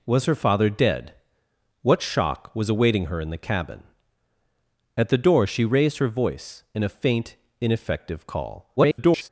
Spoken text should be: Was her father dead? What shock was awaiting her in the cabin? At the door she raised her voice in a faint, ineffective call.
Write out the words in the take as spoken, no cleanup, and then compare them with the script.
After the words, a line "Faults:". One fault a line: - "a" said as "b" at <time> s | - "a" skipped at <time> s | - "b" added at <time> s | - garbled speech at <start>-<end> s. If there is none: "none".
Was her father dead? What shock was awaiting her in the cabin? At the door she raised her voice in a faint, ineffective call. [garbled]
Faults:
- garbled speech at 8.8-9.3 s